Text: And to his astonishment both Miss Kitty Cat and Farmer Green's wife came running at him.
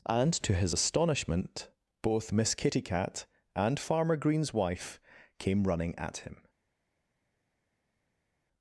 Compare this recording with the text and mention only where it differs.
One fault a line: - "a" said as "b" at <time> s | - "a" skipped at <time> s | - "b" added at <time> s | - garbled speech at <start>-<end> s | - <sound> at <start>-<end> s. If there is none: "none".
none